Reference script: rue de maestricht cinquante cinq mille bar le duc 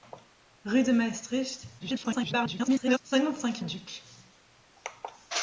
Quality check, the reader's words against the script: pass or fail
fail